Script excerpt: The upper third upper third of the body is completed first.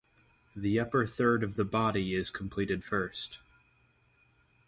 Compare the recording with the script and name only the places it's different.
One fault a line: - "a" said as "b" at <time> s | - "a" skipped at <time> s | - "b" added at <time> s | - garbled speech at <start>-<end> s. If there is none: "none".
- "upper third" skipped at 1.4 s